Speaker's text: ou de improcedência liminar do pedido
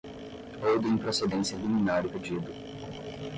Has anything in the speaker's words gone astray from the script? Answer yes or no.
no